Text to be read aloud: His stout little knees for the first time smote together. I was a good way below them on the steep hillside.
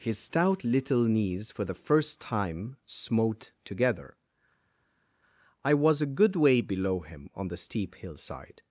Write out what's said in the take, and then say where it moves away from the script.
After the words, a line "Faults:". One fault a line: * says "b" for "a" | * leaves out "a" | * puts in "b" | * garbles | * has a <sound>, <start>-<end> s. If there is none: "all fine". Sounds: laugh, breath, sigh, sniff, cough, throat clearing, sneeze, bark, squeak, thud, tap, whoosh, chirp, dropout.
His stout little knees for the first time smote together. I was a good way below him on the steep hillside.
Faults:
* says "him" for "them"